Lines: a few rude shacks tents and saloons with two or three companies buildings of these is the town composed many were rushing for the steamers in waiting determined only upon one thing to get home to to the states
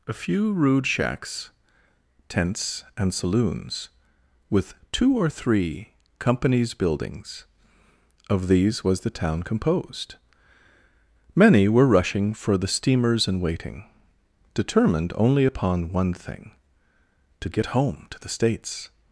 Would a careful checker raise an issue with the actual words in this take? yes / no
yes